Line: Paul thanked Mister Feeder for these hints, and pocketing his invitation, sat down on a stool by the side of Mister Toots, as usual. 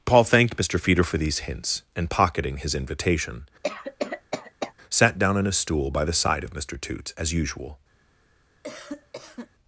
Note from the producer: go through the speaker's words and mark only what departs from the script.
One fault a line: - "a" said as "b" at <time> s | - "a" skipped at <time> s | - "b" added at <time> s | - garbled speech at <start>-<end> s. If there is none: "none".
none